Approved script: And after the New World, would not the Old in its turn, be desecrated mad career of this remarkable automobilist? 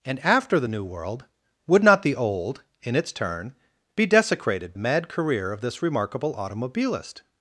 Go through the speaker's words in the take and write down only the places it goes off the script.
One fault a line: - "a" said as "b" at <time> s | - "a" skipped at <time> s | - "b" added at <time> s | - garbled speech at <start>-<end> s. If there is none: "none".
none